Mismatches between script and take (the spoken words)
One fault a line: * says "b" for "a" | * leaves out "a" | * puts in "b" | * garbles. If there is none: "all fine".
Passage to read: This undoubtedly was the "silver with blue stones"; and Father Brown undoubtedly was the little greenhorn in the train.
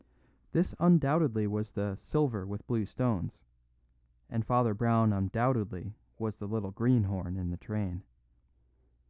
all fine